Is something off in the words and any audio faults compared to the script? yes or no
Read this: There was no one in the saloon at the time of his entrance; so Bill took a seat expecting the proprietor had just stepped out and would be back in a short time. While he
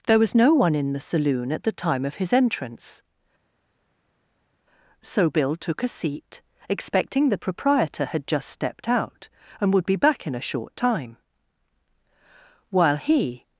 no